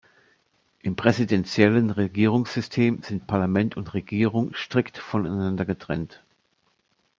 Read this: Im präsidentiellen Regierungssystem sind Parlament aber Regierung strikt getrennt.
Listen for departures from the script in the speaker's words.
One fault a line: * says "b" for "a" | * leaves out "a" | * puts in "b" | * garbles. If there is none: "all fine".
* says "und" for "aber"
* puts in "voneinander"